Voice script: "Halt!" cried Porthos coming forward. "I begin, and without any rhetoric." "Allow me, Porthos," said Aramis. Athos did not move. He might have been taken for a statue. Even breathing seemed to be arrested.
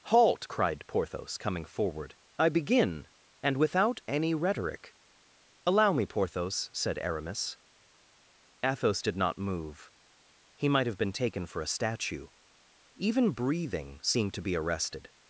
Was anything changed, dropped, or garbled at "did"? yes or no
no